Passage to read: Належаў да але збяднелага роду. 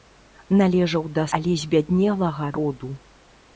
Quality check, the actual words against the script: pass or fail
pass